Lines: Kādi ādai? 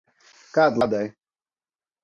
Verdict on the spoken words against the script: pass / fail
pass